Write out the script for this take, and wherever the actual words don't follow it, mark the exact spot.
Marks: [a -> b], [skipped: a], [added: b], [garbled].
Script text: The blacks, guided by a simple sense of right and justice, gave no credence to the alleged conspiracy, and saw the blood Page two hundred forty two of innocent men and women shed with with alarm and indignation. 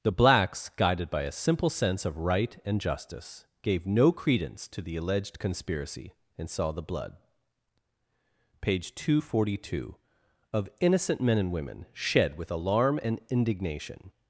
The blacks, guided by a simple sense of right and justice, gave no credence to the alleged conspiracy, and saw the blood Page two hundred forty two of innocent men and women shed with [skipped: with] alarm and indignation.